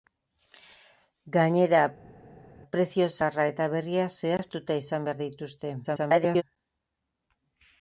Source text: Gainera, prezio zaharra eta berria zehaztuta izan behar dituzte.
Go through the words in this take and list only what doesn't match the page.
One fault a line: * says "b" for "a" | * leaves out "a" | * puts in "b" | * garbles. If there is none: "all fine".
* garbles